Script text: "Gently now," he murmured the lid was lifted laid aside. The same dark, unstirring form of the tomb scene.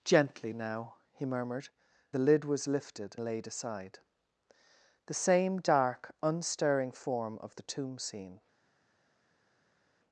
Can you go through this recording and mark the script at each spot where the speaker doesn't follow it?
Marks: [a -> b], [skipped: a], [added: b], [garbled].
"Gently now," he murmured the lid was lifted laid aside. The same dark, unstirring form of the tomb scene.